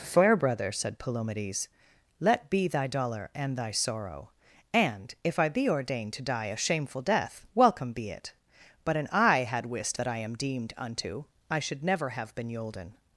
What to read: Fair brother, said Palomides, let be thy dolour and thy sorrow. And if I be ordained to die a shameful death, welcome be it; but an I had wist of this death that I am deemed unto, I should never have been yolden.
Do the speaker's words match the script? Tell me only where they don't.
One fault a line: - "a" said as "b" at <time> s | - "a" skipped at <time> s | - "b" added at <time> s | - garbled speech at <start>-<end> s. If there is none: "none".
- "of this death" skipped at 10.0 s